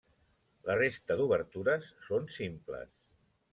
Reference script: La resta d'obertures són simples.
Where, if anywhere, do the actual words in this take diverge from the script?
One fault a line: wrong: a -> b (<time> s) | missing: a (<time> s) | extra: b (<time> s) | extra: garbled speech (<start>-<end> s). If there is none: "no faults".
no faults